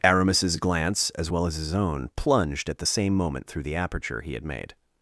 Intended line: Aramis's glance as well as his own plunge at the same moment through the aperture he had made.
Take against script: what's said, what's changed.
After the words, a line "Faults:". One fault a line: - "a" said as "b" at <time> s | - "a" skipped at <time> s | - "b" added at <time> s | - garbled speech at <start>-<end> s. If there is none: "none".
Aramis's glance as well as his own plunged at the same moment through the aperture he had made.
Faults:
- "plunge" said as "plunged" at 2.2 s